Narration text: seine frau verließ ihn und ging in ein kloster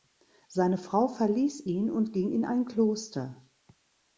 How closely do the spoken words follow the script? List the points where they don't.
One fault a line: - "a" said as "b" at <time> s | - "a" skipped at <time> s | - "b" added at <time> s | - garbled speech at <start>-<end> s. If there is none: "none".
none